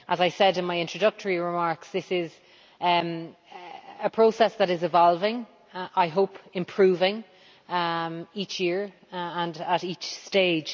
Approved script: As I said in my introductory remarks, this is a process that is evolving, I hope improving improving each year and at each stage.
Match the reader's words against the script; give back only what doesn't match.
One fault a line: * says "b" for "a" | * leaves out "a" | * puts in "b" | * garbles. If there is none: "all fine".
* leaves out "improving"